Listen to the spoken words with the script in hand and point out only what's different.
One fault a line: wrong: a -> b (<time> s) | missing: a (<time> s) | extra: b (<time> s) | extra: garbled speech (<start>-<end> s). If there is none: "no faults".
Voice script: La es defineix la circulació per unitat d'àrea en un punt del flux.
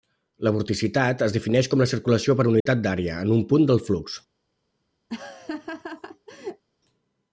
extra: vorticitat (0.6 s)
extra: com (1.7 s)